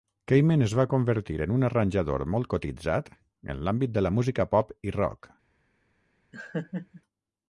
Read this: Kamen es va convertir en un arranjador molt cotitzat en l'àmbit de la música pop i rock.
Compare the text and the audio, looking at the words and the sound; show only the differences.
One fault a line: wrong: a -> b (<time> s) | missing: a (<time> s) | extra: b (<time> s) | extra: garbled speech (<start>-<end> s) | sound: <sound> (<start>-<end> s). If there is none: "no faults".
sound: laugh (6.3-7.0 s)